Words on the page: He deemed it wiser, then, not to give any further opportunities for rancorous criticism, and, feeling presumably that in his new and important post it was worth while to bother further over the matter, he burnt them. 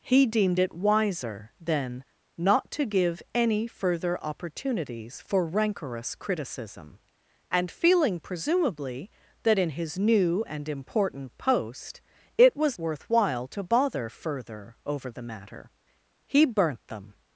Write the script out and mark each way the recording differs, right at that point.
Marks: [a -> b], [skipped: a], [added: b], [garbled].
He deemed it wiser, then, not to give any further opportunities for rancorous criticism, and, feeling presumably that in his new and important post it was worth while to bother further over the matter, he burnt them.